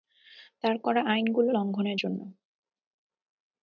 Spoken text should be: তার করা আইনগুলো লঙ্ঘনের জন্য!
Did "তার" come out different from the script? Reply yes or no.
no